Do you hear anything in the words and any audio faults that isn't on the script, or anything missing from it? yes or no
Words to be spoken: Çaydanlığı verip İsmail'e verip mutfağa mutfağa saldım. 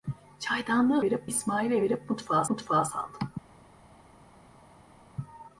no